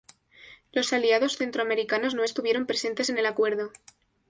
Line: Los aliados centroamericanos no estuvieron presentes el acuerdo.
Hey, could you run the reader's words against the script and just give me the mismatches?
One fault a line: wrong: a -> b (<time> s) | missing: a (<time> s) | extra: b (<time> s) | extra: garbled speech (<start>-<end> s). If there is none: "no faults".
extra: en (3.1 s)